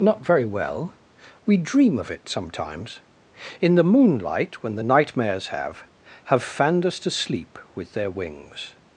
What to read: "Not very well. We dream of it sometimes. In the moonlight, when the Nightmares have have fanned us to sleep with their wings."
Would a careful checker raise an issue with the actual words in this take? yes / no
no